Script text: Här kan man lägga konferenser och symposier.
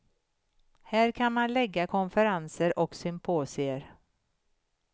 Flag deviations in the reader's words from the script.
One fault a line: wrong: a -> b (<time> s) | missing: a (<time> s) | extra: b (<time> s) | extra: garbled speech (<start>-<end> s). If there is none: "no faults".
no faults